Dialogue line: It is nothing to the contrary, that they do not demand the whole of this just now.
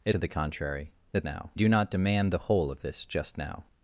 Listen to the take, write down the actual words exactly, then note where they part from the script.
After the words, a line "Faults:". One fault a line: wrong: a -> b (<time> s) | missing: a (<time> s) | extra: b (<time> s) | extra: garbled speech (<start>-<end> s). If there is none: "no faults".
It to the contrary, that now do not demand the whole of this just now.
Faults:
missing: is nothing (0.1 s)
wrong: they -> now (1.2 s)